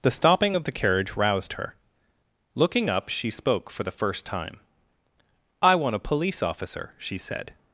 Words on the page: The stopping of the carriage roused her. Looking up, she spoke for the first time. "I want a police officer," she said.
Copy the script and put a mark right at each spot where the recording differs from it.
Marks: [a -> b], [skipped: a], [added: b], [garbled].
The stopping of the carriage roused her. Looking up, she spoke for the first time. "I want a police officer," she said.